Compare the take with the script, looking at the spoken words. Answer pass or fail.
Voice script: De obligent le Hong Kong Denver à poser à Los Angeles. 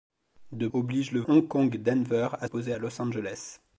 pass